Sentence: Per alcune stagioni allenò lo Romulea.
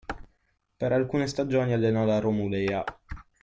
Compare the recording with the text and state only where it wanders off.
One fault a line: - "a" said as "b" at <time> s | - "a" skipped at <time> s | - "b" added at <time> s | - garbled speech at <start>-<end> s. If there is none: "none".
- "lo" said as "la" at 2.0 s